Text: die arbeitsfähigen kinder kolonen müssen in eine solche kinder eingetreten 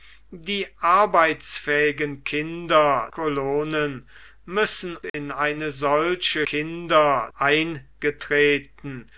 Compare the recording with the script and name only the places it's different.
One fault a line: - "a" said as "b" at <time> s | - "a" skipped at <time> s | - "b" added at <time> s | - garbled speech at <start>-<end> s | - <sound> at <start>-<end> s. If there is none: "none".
- dropout at 5.1-5.1 s